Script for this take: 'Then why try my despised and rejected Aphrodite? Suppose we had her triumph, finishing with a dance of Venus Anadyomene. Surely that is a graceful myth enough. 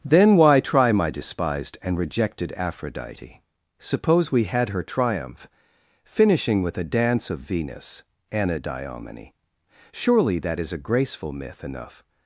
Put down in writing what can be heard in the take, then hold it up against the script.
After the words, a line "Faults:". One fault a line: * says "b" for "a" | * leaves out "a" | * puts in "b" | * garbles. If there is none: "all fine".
'Then why try my despised and rejected Aphrodite? Suppose we had her triumph, finishing with a dance of Venus Anadyomene. Surely that is a graceful myth enough.
Faults:
all fine